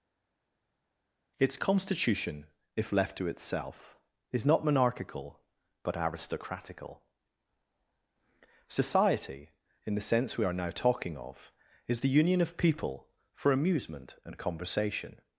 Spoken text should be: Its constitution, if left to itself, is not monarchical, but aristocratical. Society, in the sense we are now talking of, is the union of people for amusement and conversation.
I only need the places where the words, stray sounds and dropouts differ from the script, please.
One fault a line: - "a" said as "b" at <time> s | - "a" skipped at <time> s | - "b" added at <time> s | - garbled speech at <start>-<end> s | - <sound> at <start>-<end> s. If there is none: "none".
none